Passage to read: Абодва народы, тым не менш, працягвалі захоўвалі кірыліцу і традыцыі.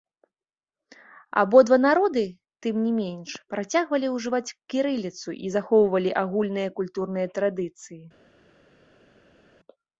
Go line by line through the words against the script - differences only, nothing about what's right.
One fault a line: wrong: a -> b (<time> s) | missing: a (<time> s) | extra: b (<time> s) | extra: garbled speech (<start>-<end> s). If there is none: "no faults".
wrong: захоўвалі -> ўжываць (4.2 s)
extra: захоўвалі агульныя культурныя (5.6 s)